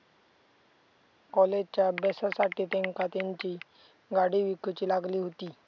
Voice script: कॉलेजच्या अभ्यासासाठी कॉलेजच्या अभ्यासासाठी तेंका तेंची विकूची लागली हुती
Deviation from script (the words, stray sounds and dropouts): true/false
true